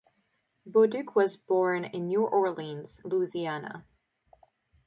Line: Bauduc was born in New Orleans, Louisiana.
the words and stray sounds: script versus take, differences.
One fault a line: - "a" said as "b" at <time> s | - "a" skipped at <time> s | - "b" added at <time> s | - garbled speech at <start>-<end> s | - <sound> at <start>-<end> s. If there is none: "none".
none